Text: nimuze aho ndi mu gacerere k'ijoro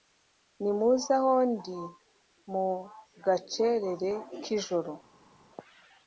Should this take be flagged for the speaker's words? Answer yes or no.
no